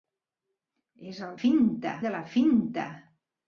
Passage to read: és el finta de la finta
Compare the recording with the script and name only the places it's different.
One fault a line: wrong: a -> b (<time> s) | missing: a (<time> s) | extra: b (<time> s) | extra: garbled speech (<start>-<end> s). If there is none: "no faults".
no faults